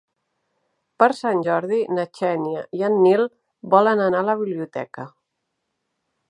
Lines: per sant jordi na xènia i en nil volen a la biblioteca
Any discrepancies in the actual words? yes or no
yes